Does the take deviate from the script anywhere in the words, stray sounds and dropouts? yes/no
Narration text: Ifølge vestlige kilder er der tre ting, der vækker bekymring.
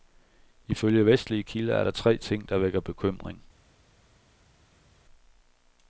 no